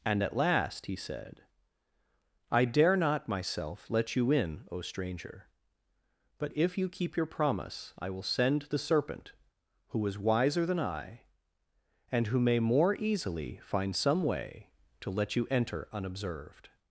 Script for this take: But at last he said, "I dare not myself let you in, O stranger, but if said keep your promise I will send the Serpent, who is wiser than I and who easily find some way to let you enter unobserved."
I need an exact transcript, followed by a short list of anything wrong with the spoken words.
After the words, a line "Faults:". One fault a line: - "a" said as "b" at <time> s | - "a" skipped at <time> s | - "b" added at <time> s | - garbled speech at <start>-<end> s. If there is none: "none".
And at last he said, "I dare not myself let you in, O stranger, but if you keep your promise I will send the Serpent, who is wiser than I and who may more easily find some way to let you enter unobserved."
Faults:
- "But" said as "And" at 0.0 s
- "said" said as "you" at 6.8 s
- "may more" added at 12.4 s